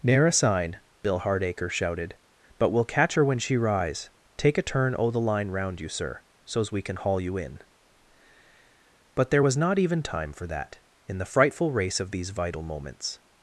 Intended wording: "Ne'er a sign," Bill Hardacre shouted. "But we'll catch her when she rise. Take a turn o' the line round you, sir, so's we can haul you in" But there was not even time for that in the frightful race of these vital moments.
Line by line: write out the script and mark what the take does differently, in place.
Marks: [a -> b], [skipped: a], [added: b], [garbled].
"Ne'er a sign," Bill Hardacre shouted. "But we'll catch her when she rise. Take a turn o' the line round you, sir, so's we can haul you in" But there was not even time for that in the frightful race of these vital moments.